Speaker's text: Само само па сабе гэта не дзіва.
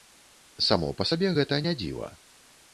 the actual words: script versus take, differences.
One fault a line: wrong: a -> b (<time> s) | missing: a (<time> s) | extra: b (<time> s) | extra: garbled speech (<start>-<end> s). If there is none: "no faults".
missing: само (0.9 s)